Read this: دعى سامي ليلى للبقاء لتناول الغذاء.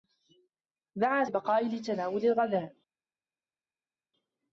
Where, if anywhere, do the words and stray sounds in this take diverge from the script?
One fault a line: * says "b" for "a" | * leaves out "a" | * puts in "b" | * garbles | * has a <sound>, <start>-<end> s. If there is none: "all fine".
* leaves out "سامي ليلى"